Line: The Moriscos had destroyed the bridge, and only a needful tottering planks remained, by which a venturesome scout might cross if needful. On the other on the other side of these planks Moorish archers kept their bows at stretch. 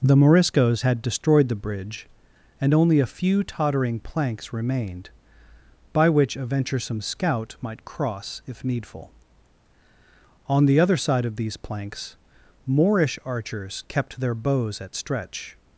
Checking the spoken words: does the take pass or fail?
fail